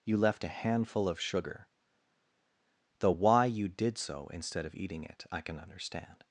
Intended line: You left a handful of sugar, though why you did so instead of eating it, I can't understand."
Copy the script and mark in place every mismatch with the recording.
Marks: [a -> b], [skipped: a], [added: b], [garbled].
You left a handful of sugar, though why you did so instead of eating it, I [can't -> can] understand."